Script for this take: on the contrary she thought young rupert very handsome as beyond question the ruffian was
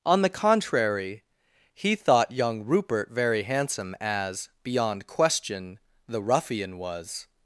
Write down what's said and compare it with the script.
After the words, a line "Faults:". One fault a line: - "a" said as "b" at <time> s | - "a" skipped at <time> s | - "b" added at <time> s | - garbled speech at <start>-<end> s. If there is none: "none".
on the contrary he thought young rupert very handsome as beyond question the ruffian was
Faults:
- "she" said as "he" at 1.7 s